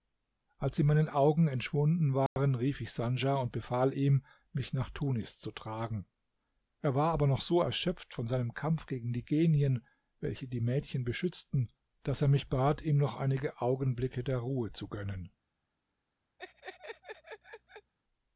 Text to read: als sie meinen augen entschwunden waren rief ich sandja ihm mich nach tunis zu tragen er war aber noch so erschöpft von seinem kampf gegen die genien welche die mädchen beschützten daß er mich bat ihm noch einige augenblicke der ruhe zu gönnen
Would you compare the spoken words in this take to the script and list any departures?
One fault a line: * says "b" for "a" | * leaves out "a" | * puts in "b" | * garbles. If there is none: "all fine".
* puts in "und befahl"